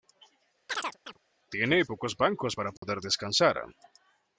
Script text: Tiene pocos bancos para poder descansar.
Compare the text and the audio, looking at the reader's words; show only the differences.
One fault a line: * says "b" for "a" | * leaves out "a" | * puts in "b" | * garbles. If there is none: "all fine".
all fine